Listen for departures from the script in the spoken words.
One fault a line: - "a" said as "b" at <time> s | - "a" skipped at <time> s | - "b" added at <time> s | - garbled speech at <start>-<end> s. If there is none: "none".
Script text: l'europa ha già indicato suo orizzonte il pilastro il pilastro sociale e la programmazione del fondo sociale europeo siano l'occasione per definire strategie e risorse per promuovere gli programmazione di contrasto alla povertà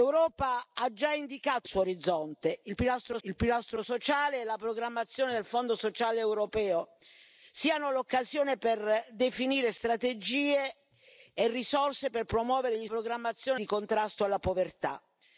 none